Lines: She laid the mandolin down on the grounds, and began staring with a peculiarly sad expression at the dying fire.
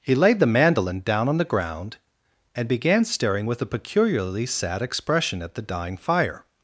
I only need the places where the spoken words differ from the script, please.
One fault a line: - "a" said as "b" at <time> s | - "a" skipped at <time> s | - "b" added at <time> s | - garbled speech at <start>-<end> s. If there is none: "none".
- "She" said as "He" at 0.0 s
- "grounds" said as "ground" at 1.4 s